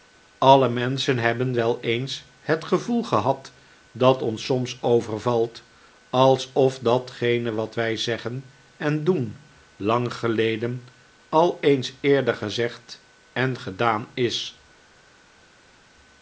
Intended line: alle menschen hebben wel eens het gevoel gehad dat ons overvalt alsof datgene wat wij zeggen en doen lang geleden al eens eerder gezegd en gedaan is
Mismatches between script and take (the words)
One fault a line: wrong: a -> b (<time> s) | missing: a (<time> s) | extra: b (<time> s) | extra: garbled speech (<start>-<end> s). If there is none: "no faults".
extra: soms (4.5 s)